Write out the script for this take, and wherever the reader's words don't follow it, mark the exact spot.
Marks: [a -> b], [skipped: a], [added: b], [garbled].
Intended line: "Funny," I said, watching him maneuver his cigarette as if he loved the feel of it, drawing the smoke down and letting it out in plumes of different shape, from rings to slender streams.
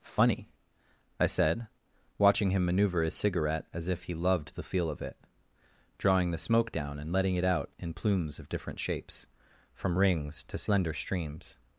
"Funny," I said, watching him maneuver his cigarette as if he loved the feel of it, drawing the smoke down and letting it out in plumes of different [shape, -> shapes] from rings to slender streams.